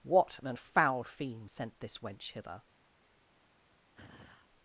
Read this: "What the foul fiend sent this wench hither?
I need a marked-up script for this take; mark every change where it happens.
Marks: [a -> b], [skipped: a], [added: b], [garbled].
"What [the -> an] foul fiend sent this wench hither?